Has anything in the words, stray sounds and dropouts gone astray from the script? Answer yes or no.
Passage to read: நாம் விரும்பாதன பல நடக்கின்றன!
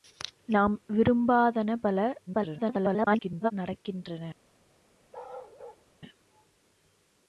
yes